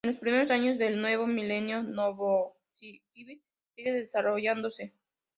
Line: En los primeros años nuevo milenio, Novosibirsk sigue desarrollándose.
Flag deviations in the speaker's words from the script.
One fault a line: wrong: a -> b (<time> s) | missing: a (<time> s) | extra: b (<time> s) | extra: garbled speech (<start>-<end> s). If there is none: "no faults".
extra: del (0.8 s)